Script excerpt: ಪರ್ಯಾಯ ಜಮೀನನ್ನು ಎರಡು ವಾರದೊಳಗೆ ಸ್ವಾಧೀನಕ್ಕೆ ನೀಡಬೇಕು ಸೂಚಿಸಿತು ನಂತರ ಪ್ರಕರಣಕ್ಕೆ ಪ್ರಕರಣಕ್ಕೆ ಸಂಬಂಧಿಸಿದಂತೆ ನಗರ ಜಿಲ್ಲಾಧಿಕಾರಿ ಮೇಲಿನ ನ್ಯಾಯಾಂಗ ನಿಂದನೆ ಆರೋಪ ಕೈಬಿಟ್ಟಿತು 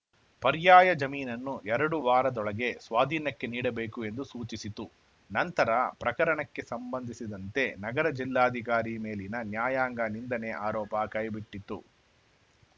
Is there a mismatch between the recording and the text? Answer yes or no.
yes